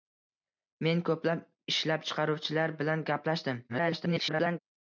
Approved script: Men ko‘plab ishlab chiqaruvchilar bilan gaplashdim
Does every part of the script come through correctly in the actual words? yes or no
no